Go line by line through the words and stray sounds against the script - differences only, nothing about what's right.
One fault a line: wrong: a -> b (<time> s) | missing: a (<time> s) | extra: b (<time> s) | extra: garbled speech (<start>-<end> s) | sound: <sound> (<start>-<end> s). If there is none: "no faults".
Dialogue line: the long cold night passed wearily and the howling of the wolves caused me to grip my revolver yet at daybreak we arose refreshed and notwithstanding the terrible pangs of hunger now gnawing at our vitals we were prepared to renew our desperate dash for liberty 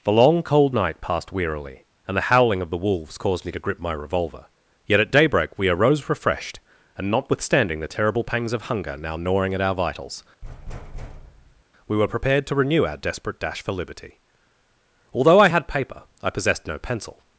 sound: thud (10.4-11.6 s)
extra: although i had paper i possessed no pencil (15.1 s)